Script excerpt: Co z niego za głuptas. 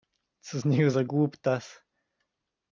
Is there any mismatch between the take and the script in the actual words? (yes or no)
no